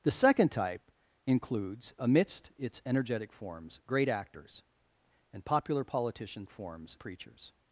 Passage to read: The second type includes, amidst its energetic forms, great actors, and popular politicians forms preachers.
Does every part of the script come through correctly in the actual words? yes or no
yes